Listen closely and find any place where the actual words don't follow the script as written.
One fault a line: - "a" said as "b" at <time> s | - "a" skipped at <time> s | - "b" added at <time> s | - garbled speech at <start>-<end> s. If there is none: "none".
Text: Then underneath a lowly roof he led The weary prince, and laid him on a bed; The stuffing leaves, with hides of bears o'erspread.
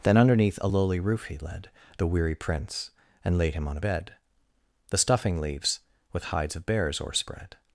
none